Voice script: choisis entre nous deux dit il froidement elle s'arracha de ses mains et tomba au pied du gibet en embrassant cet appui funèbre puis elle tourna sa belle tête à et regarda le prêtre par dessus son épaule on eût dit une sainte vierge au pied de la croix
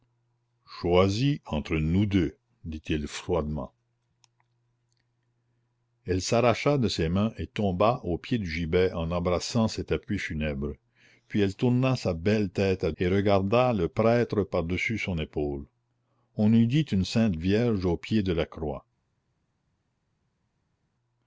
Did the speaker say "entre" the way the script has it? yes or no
yes